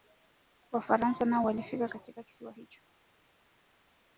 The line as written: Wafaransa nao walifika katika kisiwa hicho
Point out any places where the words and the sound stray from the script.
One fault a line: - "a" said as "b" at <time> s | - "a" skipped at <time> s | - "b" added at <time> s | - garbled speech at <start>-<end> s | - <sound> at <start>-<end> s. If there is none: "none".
none